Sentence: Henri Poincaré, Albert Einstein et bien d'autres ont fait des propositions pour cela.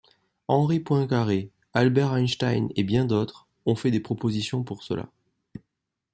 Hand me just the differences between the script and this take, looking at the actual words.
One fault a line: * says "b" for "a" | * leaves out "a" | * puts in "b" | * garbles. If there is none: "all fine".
all fine